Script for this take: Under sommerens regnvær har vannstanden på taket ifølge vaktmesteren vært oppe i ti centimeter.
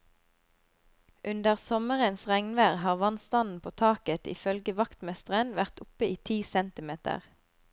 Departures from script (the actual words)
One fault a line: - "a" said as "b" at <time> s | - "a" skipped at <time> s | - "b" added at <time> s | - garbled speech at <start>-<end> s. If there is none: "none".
none